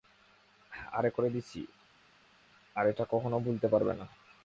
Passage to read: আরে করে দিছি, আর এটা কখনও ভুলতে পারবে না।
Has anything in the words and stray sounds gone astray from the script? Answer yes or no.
no